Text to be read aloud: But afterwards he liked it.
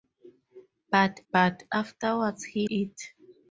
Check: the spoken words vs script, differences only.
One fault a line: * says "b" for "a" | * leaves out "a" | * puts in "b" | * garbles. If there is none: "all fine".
* puts in "but"
* leaves out "liked"